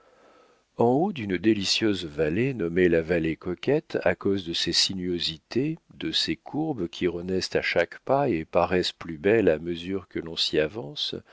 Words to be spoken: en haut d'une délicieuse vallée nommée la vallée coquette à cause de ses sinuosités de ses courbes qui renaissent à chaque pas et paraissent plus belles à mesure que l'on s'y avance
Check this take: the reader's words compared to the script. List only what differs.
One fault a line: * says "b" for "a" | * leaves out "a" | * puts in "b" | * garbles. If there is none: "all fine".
all fine